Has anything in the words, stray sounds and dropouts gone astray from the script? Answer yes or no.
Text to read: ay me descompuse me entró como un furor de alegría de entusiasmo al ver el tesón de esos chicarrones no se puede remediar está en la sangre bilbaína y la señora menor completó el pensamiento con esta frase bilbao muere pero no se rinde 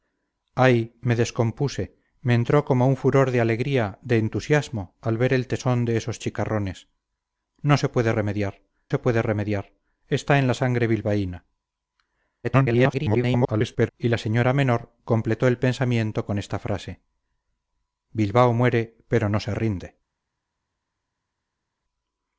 yes